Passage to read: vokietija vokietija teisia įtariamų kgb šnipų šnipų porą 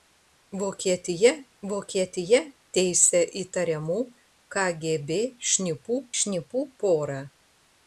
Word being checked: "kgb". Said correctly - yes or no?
yes